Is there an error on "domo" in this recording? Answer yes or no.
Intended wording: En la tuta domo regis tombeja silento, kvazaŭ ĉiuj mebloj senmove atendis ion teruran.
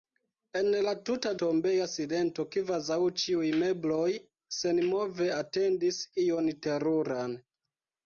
yes